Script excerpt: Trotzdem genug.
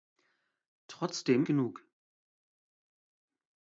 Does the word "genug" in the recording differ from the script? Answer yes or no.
no